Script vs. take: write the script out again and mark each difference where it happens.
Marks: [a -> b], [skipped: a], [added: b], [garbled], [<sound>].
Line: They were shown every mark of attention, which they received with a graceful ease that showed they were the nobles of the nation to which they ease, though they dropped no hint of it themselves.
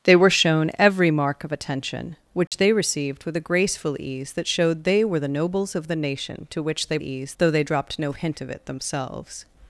They were shown every mark of attention, which [dropout] they received with a graceful ease that showed they were the nobles of the nation to which they ease, though they dropped no hint of it themselves.